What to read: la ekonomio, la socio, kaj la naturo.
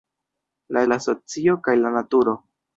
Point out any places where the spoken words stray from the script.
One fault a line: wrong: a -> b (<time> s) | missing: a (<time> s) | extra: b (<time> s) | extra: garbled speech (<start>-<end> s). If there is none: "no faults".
missing: ekonomio (0.8 s)